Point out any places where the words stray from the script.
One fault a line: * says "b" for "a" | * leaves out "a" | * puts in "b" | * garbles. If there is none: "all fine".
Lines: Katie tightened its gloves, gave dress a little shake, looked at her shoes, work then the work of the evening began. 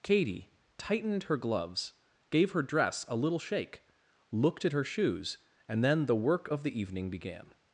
* says "her" for "its"
* puts in "her"
* says "and" for "work"